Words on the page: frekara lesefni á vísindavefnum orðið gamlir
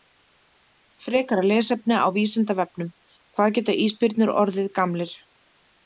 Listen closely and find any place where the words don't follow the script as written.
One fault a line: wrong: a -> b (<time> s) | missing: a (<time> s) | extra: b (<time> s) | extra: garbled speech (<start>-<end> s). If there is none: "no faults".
extra: hvað geta ísbirnir (3.4 s)